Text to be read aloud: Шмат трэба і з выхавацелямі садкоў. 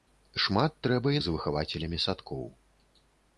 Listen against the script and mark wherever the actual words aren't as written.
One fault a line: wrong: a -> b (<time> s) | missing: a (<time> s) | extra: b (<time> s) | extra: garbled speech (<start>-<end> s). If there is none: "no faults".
no faults